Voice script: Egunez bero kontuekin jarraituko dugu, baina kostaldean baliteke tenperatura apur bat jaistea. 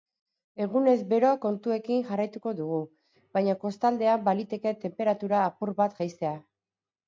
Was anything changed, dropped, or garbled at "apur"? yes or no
no